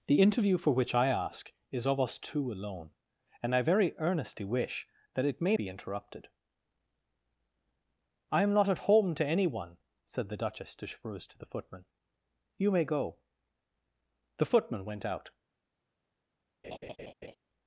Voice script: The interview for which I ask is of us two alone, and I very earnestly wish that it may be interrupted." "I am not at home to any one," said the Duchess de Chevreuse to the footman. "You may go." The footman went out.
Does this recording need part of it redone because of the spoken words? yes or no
no